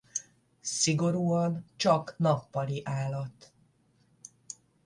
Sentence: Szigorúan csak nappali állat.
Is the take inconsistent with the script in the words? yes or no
no